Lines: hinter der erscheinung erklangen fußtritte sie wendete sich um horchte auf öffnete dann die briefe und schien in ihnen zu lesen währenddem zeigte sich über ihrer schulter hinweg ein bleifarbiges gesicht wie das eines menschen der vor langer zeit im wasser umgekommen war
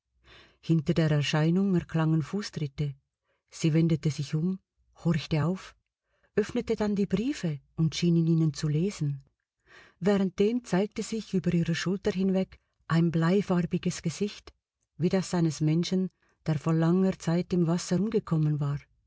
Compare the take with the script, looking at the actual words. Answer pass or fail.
pass